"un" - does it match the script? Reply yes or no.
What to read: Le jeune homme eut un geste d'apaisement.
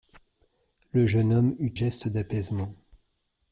no